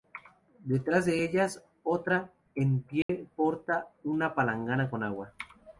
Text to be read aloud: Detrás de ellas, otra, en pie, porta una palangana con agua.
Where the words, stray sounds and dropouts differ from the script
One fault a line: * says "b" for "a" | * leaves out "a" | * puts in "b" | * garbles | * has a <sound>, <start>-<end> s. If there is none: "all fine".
* has a dropout, 3.0-3.1 s